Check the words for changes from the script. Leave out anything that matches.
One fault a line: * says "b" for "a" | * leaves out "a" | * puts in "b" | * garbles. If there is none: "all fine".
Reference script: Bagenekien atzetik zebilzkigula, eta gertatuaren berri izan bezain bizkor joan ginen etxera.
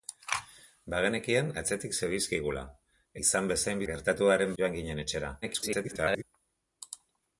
* leaves out "eta gertatuaren berri"
* says "gertatuaren" for "bizkor"
* garbles